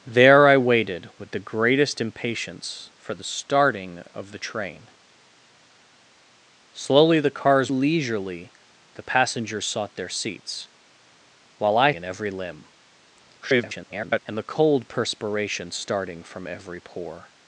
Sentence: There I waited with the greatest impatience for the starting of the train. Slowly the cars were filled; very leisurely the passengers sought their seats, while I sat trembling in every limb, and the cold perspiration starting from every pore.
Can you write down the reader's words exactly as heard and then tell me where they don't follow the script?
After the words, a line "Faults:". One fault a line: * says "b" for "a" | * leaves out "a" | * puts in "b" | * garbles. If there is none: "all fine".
There I waited with the greatest impatience for the starting of the train. Slowly the cars leisurely the passengers sought their seats, while I in every limb, [garbled] and the cold perspiration starting from every pore.
Faults:
* leaves out "were filled very"
* leaves out "sat trembling"
* garbles